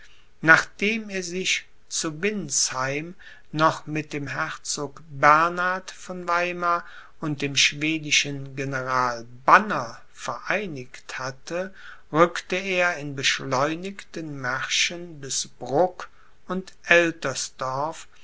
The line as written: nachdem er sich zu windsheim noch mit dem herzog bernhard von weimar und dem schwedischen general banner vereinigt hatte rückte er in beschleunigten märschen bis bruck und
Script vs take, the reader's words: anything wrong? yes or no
no